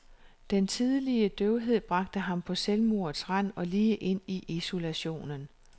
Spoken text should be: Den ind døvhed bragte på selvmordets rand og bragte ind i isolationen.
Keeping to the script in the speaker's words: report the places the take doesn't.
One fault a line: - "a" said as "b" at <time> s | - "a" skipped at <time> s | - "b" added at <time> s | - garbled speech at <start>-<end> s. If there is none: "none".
- "ind" said as "tidlige" at 0.7 s
- "ham" added at 2.2 s
- "bragte" said as "lige" at 3.6 s